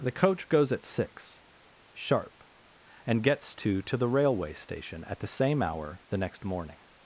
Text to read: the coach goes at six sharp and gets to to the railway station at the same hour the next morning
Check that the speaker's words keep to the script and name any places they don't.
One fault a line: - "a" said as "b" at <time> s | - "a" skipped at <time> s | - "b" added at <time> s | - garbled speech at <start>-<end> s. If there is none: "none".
none